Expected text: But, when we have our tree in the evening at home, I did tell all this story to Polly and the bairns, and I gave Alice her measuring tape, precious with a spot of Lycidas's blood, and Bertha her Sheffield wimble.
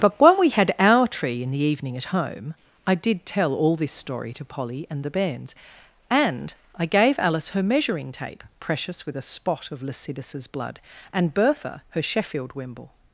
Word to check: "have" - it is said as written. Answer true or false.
false